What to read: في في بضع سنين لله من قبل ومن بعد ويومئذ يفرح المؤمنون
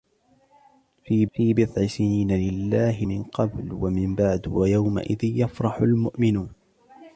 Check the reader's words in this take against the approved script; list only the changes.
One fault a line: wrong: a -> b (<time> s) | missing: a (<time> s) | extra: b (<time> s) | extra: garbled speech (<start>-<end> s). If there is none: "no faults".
no faults